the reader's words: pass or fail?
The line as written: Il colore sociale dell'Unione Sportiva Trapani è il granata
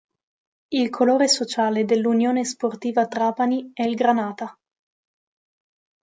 pass